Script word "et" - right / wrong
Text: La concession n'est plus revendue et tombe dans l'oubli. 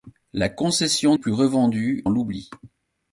wrong